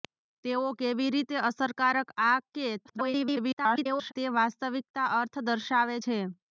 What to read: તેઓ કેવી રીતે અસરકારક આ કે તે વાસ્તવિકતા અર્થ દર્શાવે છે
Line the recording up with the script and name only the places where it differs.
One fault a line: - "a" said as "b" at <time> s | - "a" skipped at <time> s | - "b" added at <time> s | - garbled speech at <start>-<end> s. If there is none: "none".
- garbled speech at 2.8-4.1 s